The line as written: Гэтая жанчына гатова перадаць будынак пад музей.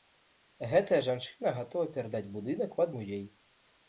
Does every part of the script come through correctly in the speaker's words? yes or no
yes